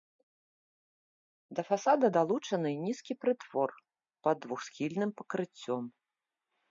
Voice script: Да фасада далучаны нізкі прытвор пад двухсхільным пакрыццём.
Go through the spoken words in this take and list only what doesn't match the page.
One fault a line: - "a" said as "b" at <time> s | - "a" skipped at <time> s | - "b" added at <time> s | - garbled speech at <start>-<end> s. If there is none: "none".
none